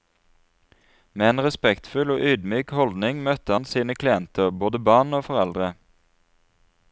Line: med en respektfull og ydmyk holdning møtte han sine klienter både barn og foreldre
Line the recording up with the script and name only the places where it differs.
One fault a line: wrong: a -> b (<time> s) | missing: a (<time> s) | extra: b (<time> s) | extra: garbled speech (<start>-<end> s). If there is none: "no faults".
no faults